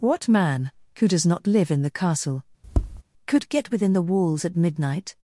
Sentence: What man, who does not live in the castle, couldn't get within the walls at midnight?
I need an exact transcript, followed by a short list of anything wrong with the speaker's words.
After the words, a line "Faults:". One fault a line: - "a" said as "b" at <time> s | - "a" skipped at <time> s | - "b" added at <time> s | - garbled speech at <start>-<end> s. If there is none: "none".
What man, who does not live in the castle, could get within the walls at midnight?
Faults:
- "couldn't" said as "could" at 3.3 s